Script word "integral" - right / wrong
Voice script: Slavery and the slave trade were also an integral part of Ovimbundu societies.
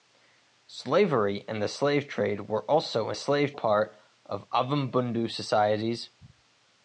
wrong